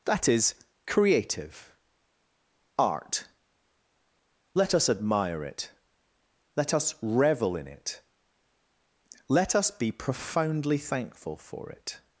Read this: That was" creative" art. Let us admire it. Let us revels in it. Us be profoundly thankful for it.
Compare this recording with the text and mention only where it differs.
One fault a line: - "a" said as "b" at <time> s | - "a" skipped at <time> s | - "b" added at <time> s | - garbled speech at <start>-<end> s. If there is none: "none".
- "was" said as "is" at 0.3 s
- "revels" said as "revel" at 7.0 s
- "Let" added at 9.3 s